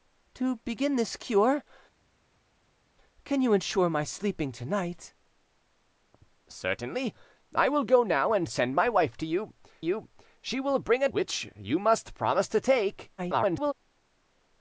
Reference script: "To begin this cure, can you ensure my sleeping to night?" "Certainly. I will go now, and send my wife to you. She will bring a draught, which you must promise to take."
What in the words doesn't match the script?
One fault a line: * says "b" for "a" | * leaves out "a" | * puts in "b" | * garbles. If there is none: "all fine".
* puts in "you"
* leaves out "draught"
* garbles